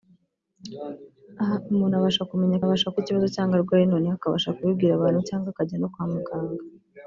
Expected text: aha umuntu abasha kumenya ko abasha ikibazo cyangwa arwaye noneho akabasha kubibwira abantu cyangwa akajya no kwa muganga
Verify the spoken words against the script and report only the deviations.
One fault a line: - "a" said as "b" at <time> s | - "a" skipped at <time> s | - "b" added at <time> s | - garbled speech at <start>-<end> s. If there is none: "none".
none